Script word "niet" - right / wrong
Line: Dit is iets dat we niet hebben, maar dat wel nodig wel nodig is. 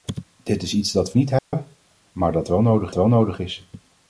right